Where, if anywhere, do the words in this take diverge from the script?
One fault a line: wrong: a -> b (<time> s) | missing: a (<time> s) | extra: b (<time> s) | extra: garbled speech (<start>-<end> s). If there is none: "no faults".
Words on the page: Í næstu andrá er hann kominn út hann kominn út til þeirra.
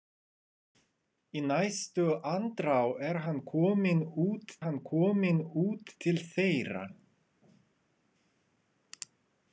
no faults